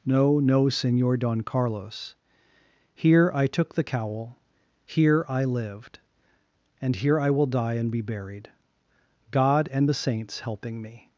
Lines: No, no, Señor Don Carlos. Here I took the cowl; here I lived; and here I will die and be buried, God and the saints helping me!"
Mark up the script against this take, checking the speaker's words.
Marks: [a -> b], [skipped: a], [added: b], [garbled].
No, no, Señor Don Carlos. Here I took the cowl; here I lived; and here I will die and be buried, God and the saints helping me!"